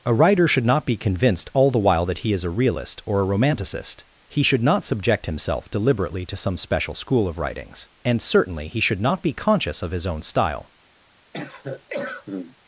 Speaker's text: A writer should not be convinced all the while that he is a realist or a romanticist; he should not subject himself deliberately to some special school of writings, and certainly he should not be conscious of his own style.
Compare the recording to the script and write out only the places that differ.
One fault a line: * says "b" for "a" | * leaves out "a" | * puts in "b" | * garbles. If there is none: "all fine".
all fine